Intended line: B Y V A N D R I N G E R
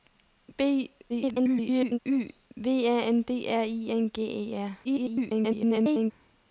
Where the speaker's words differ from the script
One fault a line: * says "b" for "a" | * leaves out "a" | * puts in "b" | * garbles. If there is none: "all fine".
* garbles
* garbles